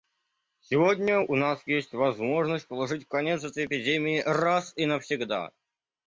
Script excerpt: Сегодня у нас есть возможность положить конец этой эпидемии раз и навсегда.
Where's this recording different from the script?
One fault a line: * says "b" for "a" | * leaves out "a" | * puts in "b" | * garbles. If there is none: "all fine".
all fine